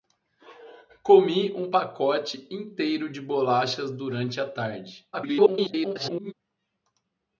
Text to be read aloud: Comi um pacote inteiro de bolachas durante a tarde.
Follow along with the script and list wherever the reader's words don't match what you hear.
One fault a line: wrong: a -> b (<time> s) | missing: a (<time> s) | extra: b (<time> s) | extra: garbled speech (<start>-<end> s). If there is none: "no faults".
extra: garbled speech (5.1-6.3 s)